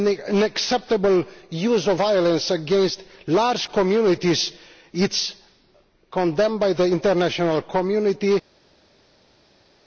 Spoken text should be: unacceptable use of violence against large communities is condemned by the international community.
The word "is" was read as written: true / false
true